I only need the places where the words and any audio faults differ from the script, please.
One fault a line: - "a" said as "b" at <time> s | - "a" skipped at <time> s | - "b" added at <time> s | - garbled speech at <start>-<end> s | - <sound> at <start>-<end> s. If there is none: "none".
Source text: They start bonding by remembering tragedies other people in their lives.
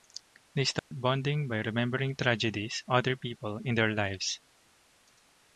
- dropout at 0.8-0.9 s